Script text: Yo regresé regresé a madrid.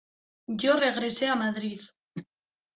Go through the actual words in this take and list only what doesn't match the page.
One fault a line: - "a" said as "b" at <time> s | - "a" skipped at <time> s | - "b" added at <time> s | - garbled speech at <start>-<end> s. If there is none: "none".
- "regresé" skipped at 1.3 s